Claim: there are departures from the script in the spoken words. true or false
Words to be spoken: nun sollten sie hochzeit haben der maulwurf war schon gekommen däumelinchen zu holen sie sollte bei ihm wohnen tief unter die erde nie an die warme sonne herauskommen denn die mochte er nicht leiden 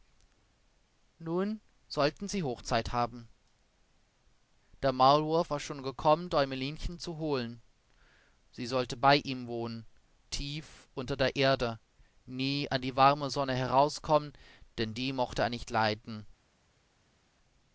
true